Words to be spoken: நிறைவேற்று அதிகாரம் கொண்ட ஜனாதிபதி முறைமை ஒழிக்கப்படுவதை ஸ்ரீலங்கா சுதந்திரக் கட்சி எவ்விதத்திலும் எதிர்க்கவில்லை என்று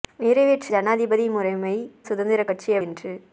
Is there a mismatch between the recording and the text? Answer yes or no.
yes